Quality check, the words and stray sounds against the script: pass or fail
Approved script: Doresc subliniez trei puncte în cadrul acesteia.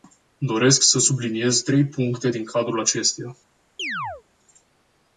fail